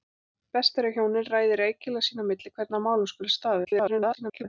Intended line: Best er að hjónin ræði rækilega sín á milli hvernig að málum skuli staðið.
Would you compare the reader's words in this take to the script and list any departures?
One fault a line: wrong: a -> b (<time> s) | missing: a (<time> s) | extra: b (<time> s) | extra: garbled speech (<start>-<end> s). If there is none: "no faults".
extra: garbled speech (3.6-4.4 s)